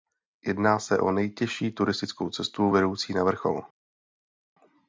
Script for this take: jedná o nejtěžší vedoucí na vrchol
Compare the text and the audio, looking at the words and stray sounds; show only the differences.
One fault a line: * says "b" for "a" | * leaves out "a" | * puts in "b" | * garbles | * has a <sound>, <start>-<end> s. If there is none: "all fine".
* puts in "se"
* puts in "turistickou cestu"